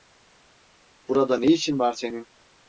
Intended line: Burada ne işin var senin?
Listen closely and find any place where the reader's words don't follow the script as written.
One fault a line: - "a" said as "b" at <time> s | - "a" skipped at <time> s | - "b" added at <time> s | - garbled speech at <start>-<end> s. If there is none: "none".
none